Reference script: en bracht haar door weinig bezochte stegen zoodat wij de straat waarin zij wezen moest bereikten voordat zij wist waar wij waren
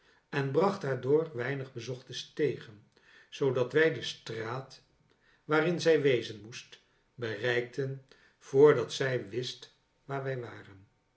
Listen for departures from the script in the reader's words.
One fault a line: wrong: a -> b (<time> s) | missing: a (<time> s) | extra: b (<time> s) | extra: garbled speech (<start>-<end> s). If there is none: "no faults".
no faults